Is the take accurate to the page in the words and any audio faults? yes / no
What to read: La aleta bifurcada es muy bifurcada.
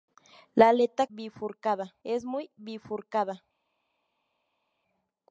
yes